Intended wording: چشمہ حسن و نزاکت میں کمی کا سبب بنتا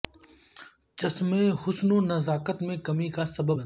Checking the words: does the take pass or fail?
pass